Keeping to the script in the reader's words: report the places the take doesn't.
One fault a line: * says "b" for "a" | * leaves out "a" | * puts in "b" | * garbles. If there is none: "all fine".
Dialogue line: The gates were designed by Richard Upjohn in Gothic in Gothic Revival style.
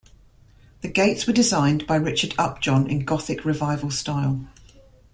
* leaves out "in Gothic"